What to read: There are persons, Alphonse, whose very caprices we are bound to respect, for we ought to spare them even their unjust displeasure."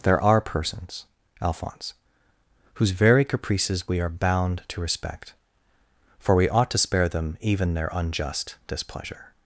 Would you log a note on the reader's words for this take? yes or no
no